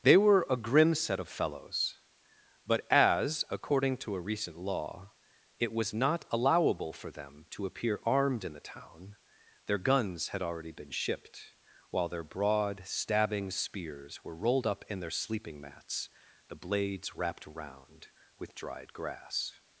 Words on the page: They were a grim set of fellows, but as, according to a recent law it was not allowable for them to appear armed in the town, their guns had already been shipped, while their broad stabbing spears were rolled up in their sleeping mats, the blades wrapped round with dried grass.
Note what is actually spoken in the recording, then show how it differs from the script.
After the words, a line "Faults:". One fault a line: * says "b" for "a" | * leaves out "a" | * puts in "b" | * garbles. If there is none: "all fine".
They were a grim set of fellows, but as, according to a recent law it was not allowable for them to appear armed in the town, their guns had already been shipped, while their broad stabbing spears were rolled up in their sleeping mats, the blades wrapped round with dried grass.
Faults:
all fine